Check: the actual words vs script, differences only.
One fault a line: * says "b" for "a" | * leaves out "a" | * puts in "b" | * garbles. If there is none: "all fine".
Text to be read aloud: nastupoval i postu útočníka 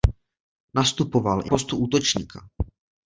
all fine